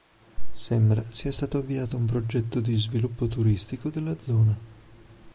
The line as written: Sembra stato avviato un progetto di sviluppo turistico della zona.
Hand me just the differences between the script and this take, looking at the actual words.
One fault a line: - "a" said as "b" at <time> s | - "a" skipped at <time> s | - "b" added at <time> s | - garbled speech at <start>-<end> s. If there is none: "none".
- "sia" added at 1.1 s